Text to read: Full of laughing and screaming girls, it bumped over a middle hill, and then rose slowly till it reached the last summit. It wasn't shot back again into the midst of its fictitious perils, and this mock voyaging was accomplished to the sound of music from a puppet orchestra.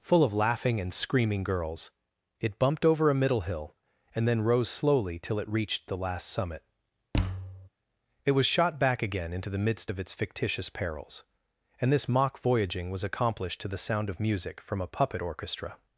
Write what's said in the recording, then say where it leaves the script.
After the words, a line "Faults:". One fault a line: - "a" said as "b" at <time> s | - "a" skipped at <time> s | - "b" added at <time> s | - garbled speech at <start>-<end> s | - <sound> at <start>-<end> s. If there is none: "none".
Full of laughing and screaming girls, it bumped over a middle hill, and then rose slowly till it reached the last summit. It was shot back again into the midst of its fictitious perils, and this mock voyaging was accomplished to the sound of music from a puppet orchestra.
Faults:
- thud at 7.1-7.7 s
- "wasn't" said as "was" at 8.3 s